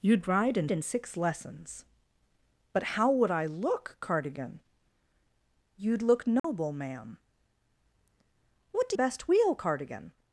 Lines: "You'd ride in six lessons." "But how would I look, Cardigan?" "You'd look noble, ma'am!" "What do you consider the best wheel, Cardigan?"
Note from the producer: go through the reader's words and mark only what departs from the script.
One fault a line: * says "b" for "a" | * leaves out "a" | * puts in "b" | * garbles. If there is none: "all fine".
* puts in "in"
* leaves out "you consider the"